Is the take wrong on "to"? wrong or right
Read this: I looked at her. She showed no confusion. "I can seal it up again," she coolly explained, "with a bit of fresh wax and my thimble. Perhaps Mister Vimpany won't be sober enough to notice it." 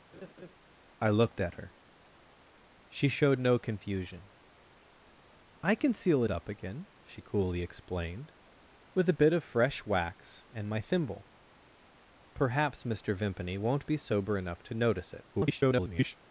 right